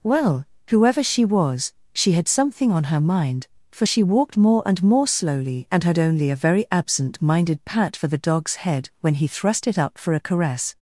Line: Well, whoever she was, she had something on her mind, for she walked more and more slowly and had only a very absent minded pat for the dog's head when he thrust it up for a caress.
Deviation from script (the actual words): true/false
false